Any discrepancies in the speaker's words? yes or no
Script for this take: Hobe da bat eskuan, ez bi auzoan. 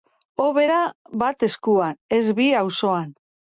no